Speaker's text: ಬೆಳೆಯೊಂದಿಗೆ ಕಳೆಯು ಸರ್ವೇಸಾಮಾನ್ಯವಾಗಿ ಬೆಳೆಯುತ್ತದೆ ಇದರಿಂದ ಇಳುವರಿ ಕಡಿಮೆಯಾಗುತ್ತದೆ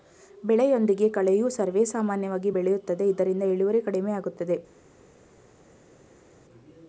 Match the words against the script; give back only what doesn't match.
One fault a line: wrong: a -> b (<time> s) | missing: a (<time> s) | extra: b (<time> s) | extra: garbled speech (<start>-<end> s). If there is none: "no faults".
no faults